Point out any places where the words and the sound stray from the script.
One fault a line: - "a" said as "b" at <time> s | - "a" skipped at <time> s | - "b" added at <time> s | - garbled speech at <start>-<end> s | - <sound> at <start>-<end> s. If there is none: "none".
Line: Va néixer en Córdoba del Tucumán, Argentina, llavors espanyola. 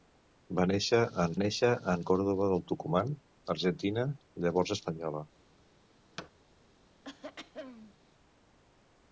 - "néixer en" added at 1.4 s
- thud at 6.2-6.3 s
- throat clearing at 7.0-8.0 s